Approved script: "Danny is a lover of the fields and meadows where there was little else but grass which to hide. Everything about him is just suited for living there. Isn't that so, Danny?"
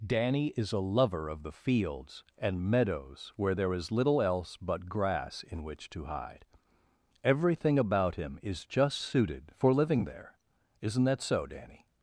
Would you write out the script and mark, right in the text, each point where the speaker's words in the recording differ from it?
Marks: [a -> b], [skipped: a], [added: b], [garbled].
"Danny is a lover of the fields and meadows where there [was -> is] little else but grass [added: in] which to hide. Everything about him is just suited for living there. Isn't that so, Danny?"